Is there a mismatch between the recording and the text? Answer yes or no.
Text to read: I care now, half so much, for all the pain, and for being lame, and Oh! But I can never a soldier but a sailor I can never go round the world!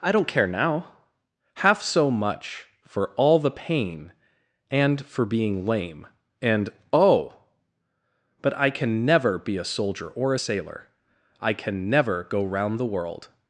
yes